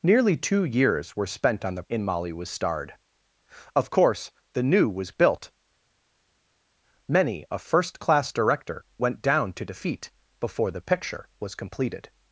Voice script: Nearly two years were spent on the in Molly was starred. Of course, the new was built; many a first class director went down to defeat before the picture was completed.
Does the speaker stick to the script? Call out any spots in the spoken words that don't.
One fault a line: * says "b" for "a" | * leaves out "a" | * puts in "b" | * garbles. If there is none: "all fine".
all fine